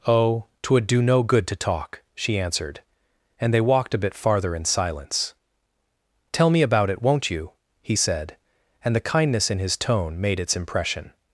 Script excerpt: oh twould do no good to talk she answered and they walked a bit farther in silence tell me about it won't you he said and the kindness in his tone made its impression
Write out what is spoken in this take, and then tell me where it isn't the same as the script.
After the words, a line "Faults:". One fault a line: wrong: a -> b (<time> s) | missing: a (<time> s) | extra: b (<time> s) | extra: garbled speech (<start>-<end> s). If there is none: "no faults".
oh twould do no good to talk she answered and they walked a bit farther in silence tell me about it won't you he said and the kindness in his tone made its impression
Faults:
no faults